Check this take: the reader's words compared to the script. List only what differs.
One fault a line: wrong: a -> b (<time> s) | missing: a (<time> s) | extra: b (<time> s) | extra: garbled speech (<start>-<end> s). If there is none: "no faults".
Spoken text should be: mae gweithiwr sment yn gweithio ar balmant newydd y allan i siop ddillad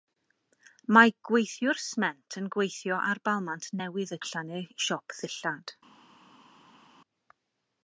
no faults